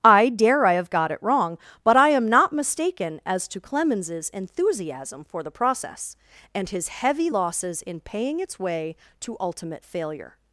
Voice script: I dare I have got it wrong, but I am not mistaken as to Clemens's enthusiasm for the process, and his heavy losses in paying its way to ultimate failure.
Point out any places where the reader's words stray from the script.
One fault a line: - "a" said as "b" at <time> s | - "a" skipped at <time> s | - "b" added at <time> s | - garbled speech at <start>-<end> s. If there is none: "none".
none